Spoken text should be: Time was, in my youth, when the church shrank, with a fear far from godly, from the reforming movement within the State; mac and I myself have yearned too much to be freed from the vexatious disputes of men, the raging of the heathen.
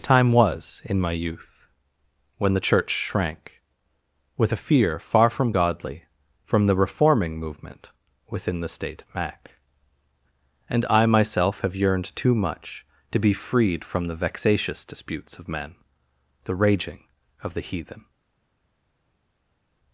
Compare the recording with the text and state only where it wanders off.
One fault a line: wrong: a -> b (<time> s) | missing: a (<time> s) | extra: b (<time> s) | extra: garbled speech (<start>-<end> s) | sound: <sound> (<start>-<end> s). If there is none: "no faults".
no faults